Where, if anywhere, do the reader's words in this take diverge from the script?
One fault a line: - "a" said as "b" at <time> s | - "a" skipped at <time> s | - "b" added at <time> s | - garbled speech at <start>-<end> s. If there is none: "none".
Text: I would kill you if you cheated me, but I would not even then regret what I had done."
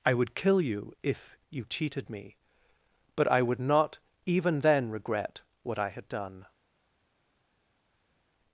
none